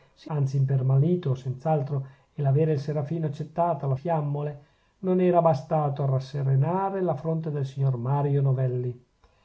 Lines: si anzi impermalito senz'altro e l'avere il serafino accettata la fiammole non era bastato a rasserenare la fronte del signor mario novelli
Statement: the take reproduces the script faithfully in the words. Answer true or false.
true